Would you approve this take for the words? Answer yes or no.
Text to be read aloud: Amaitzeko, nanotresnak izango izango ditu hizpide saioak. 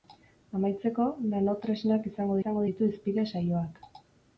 yes